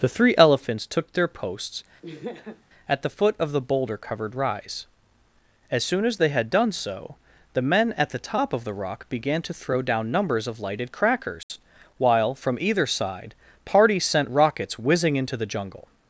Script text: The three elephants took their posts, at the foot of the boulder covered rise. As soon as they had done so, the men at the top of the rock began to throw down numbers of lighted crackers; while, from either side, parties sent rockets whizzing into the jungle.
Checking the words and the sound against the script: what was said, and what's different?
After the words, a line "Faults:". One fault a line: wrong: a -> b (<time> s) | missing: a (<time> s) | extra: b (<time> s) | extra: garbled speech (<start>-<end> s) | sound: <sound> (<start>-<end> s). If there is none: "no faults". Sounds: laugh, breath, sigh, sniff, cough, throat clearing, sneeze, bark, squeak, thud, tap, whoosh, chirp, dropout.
The three elephants took their posts, at the foot of the boulder covered rise. As soon as they had done so, the men at the top of the rock began to throw down numbers of lighted crackers; while, from either side, parties sent rockets whizzing into the jungle.
Faults:
sound: laugh (2.0-2.6 s)
sound: dropout (11.4-11.5 s)